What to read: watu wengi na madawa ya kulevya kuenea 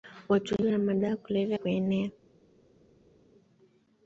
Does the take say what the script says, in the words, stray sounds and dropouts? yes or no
yes